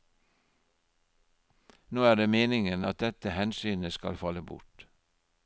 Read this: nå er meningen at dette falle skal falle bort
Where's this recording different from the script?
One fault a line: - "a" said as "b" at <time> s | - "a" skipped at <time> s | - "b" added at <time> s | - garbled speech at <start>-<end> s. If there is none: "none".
- "det" added at 2.1 s
- "falle" said as "hensynet" at 3.3 s